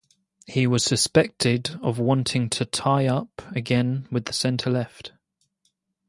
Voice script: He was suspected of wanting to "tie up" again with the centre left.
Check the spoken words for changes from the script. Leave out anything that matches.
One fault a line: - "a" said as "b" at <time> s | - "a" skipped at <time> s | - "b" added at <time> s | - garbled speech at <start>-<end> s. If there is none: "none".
none